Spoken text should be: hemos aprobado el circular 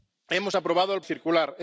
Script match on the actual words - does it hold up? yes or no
yes